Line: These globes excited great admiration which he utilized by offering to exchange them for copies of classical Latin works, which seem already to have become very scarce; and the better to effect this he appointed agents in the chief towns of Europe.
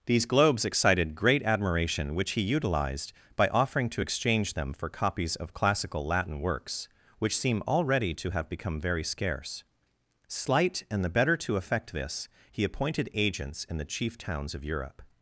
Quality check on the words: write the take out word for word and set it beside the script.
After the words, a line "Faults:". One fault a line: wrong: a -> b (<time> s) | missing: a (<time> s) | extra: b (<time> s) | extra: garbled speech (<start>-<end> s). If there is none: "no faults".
These globes excited great admiration which he utilized by offering to exchange them for copies of classical Latin works, which seem already to have become very scarce; slight and the better to effect this he appointed agents in the chief towns of Europe.
Faults:
extra: slight (10.3 s)